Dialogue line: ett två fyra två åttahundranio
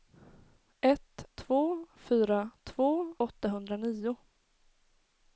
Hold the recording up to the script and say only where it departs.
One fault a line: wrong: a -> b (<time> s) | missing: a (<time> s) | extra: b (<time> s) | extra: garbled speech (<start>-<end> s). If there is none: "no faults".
no faults